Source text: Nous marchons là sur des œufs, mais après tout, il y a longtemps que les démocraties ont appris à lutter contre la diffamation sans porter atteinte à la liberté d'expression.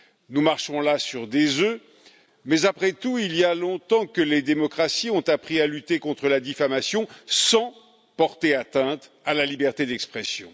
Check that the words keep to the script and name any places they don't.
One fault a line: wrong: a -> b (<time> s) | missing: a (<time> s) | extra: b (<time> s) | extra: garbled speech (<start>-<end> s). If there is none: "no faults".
no faults